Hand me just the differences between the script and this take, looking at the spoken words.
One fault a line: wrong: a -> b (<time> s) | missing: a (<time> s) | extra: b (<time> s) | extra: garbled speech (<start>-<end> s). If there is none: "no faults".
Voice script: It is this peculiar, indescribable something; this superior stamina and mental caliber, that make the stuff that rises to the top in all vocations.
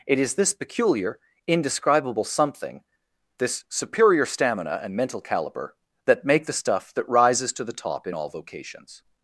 no faults